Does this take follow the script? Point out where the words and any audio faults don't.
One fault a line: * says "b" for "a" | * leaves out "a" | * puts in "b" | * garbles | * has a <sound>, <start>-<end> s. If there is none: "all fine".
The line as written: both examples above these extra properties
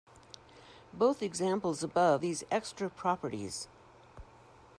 all fine